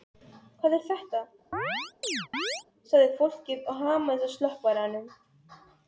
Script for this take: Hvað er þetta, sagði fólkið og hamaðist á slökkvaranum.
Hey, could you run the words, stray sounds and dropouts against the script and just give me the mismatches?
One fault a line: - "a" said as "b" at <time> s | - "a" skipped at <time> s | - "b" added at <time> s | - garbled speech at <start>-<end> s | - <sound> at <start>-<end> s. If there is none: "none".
- chirp at 1.5-2.6 s